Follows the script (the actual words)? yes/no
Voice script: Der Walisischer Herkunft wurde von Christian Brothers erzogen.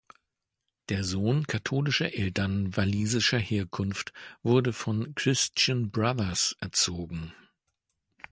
no